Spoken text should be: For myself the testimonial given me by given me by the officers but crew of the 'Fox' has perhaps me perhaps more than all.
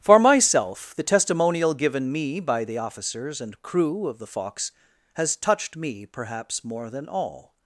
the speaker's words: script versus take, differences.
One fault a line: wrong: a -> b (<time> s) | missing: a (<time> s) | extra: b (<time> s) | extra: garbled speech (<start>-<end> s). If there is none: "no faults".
missing: given me by (2.6 s)
wrong: but -> and (3.4 s)
wrong: perhaps -> touched (5.3 s)